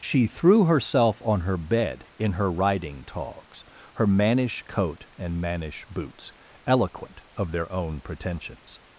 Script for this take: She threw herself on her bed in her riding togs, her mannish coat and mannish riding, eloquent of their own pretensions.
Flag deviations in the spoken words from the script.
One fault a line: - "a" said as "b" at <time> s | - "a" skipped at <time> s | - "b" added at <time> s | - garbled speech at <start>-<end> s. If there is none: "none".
- "riding" said as "boots" at 5.9 s